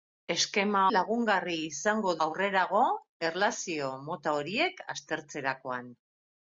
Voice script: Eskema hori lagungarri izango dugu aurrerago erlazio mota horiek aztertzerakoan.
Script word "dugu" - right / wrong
wrong